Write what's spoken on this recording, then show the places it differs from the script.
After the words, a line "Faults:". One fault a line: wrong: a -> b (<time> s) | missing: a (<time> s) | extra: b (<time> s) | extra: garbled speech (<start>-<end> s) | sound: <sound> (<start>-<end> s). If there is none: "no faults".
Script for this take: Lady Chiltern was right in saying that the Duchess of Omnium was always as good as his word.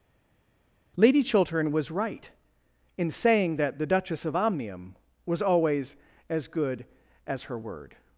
Lady Chiltern was right in saying that the Duchess of Omnium was always as good as her word.
Faults:
wrong: his -> her (7.4 s)